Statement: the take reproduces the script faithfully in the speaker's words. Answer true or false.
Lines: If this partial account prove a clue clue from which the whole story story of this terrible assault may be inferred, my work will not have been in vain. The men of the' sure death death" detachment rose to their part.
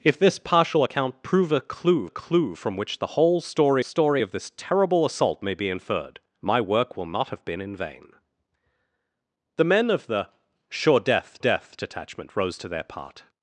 true